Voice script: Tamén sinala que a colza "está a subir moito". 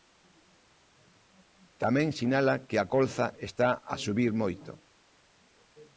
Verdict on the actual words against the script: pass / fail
pass